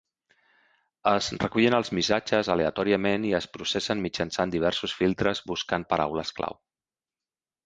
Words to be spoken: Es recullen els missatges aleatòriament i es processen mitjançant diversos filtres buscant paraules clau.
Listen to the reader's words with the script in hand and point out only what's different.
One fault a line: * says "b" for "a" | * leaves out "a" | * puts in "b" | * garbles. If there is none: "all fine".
all fine